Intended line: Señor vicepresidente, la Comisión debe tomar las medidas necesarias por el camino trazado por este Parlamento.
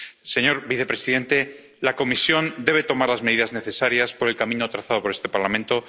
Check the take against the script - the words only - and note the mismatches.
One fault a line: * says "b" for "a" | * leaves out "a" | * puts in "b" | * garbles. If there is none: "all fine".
all fine